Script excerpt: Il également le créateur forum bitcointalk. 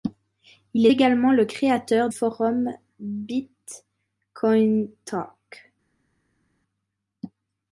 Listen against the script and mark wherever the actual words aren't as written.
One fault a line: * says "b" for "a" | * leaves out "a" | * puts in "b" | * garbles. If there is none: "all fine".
all fine